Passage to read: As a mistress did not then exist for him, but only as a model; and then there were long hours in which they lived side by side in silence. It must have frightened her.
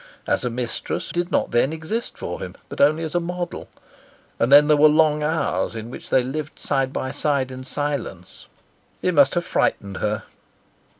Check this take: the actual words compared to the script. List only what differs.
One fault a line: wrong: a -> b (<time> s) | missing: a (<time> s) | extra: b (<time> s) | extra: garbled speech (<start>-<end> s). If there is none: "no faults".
no faults